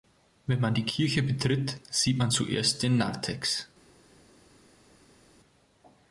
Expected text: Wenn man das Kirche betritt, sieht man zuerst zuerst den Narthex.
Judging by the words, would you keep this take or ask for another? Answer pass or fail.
fail